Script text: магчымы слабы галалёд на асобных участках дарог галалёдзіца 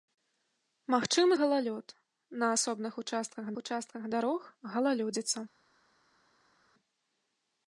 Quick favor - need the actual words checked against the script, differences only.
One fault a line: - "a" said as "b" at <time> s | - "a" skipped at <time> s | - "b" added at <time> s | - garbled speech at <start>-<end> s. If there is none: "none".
- "слабы" skipped at 1.4 s
- "участках" added at 3.6 s